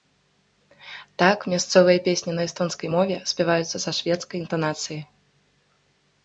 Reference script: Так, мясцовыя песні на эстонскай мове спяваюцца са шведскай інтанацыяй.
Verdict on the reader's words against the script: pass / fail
pass